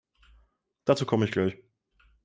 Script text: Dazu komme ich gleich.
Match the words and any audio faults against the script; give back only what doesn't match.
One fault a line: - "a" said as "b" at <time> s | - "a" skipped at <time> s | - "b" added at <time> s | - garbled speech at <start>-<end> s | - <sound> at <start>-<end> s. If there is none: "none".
none